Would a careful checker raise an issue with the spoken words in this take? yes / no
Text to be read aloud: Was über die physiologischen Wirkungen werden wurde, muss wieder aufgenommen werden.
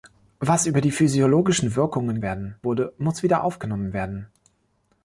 no